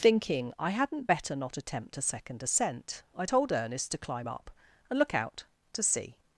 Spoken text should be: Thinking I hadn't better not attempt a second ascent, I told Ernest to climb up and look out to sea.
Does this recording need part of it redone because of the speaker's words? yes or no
no